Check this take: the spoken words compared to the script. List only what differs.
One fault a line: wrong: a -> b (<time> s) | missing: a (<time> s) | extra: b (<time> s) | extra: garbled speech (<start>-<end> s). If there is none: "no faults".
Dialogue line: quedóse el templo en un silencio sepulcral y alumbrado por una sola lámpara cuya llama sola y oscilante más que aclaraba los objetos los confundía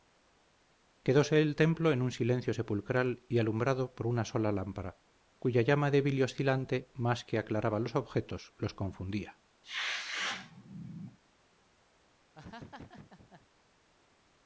wrong: sola -> débil (5.9 s)